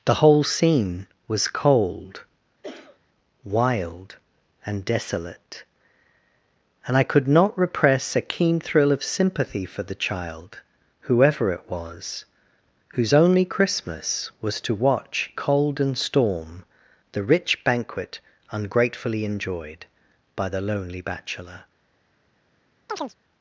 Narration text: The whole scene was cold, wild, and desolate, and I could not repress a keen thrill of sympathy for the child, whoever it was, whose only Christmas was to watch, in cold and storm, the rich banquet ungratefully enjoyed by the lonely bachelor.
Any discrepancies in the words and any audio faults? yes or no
yes